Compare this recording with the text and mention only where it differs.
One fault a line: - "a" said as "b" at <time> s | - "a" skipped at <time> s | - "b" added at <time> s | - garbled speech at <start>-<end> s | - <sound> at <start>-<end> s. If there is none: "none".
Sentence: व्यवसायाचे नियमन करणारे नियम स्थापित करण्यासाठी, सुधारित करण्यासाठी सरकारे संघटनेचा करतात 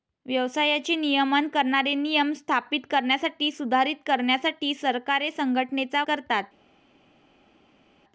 none